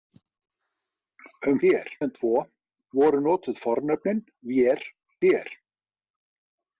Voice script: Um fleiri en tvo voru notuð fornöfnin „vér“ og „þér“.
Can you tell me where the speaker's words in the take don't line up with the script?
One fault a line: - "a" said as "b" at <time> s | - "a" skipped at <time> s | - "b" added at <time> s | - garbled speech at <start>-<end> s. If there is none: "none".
- "fleiri" said as "þér" at 1.6 s
- "og" skipped at 4.8 s